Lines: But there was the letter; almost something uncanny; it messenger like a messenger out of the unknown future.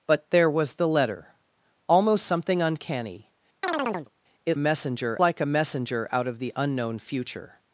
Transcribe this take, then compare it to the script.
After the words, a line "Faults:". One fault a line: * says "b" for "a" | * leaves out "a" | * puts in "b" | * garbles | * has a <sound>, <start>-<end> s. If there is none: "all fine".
But there was the letter; almost something uncanny; it messenger like a messenger out of the unknown future.
Faults:
* has a chirp, 3.6-4.1 s